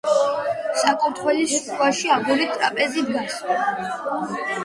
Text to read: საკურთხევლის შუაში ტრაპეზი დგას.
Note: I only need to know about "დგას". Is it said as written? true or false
true